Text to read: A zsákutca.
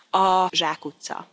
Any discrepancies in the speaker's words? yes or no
no